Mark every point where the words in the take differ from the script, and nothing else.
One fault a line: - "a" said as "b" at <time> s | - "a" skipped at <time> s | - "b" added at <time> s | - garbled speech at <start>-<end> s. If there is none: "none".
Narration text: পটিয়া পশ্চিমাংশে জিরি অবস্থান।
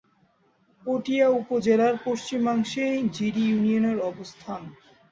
- "উপজেলার" added at 1.4 s
- "ইউনিয়নের" added at 3.5 s